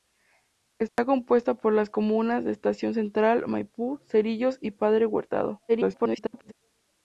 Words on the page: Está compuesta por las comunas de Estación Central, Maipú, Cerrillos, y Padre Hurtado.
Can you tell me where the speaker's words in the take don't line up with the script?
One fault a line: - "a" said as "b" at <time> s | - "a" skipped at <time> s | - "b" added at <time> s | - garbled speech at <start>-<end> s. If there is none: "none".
- garbled speech at 5.7-6.5 s